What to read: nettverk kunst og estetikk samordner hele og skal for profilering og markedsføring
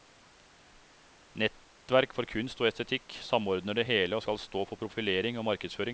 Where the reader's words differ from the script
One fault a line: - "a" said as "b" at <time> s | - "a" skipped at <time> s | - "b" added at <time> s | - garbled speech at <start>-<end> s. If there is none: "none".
- "for" added at 2.1 s
- "det" added at 3.8 s
- "stå" added at 4.4 s